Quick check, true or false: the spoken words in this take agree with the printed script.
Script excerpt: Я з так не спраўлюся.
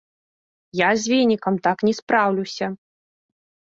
false